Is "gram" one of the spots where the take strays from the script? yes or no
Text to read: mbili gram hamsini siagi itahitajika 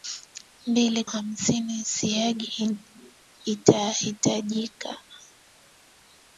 yes